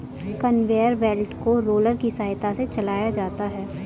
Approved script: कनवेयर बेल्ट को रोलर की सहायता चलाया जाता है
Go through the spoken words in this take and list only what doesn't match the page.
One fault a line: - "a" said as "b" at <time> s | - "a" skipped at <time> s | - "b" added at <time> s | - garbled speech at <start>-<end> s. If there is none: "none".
- "से" added at 2.5 s